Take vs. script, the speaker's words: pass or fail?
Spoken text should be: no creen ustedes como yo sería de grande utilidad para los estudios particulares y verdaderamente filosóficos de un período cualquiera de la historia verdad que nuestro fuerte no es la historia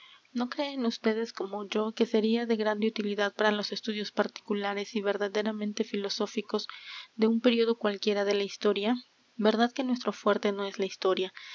fail